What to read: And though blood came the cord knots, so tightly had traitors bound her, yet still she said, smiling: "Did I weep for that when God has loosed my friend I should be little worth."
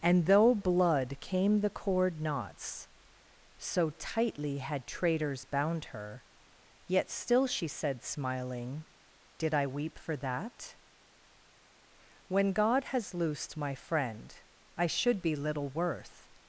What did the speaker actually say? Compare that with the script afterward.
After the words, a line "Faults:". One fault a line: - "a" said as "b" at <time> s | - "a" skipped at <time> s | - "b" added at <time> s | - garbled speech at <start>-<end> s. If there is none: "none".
And though blood came the cord knots, so tightly had traitors bound her, yet still she said, smiling: "Did I weep for that when God has loosed my friend I should be little worth."
Faults:
none